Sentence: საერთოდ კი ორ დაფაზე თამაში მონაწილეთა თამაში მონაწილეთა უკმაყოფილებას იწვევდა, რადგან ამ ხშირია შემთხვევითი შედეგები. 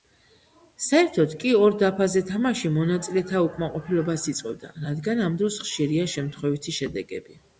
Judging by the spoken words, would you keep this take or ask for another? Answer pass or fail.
fail